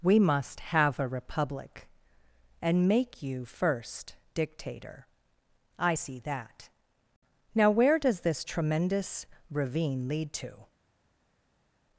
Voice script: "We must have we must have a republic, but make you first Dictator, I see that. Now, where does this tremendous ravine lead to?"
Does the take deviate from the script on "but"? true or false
true